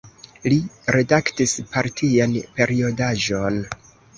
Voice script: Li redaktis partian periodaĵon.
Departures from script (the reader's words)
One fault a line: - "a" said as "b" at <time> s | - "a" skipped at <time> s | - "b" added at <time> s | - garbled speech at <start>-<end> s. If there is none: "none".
none